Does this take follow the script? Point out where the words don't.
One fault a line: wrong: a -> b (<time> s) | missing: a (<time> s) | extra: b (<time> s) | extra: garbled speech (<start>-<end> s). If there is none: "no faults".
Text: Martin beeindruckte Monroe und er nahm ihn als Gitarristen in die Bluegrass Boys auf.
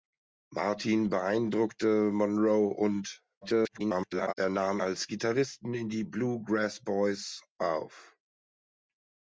extra: garbled speech (3.4-4.3 s)
missing: ihn (4.8 s)